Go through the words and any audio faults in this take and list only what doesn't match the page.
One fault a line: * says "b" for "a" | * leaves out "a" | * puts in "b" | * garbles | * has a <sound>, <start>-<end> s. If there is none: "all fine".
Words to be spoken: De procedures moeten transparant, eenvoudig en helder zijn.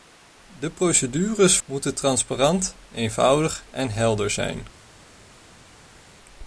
all fine